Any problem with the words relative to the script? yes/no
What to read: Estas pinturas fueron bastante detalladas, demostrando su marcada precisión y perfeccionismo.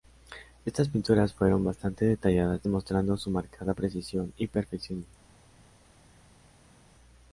no